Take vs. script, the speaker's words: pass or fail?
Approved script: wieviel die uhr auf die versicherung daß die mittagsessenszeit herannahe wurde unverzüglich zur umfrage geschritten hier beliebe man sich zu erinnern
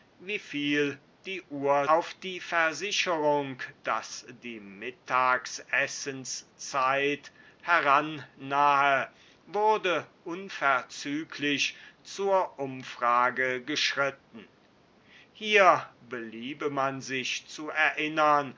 pass